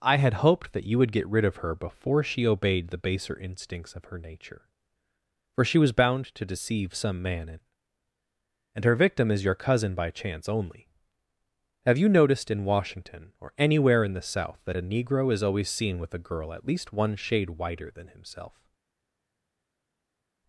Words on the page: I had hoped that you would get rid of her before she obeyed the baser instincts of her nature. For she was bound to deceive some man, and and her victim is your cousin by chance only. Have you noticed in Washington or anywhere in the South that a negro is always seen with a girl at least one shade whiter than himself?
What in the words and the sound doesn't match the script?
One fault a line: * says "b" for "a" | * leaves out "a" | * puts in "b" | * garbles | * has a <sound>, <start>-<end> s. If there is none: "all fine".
all fine